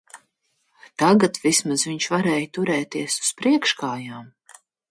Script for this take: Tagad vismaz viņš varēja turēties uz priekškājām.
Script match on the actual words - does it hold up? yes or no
yes